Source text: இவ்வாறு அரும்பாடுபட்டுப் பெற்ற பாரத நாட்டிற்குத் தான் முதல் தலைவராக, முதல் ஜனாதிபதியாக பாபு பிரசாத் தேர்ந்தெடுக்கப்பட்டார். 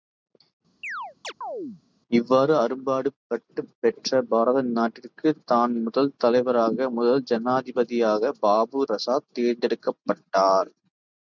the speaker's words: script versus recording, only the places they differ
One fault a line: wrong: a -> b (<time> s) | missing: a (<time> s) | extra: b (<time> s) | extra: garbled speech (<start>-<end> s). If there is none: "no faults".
no faults